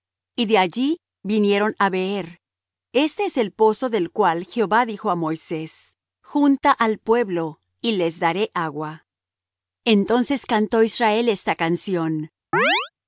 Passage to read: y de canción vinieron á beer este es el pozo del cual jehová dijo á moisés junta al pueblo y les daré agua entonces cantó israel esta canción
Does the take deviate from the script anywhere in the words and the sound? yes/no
yes